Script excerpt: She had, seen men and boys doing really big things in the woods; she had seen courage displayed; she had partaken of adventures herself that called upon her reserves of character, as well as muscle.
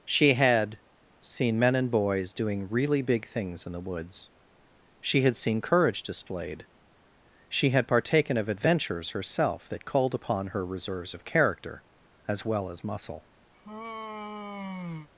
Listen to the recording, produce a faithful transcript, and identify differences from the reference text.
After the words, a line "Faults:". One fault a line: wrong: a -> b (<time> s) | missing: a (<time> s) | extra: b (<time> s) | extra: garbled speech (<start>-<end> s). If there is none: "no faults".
She had, seen men and boys doing really big things in the woods; she had seen courage displayed; she had partaken of adventures herself that called upon her reserves of character, as well as muscle.
Faults:
no faults